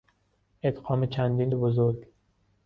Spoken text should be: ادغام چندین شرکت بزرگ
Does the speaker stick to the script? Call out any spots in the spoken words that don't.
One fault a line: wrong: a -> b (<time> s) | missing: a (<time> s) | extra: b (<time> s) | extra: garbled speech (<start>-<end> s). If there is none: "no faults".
missing: شرکت (1.5 s)